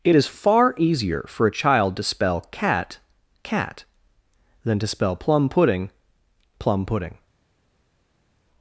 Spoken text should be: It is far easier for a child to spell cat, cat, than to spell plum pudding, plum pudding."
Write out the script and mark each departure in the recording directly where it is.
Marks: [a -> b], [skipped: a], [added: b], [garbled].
It is far easier for a child to spell cat, cat, than to spell plum pudding, plum pudding."